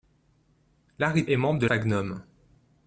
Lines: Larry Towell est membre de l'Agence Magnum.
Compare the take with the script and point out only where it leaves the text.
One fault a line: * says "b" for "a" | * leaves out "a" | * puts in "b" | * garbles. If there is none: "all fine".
* leaves out "Towell"
* leaves out "l'Agence"